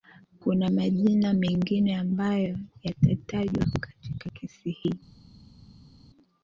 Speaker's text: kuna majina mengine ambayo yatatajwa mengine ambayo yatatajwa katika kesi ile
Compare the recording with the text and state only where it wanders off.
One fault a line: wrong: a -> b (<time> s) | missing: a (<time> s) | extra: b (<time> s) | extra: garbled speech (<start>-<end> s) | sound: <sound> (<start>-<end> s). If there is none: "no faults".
missing: mengine ambayo yatatajwa (3.6 s)
wrong: ile -> hii (4.7 s)